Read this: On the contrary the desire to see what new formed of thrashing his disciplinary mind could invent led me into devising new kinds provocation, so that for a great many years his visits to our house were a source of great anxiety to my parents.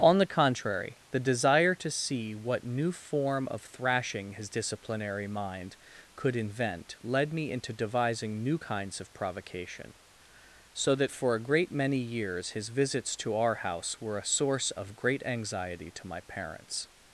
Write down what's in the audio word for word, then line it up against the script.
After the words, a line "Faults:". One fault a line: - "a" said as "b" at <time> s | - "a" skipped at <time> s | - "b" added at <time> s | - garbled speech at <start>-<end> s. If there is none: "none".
On the contrary the desire to see what new form of thrashing his disciplinary mind could invent led me into devising new kinds of provocation, so that for a great many years his visits to our house were a source of great anxiety to my parents.
Faults:
- "formed" said as "form" at 2.9 s
- "of" added at 9.0 s